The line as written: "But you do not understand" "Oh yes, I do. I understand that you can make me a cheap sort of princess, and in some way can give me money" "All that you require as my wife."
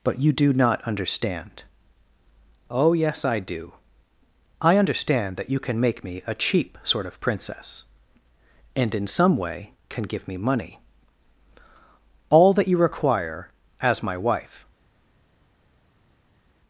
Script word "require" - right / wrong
right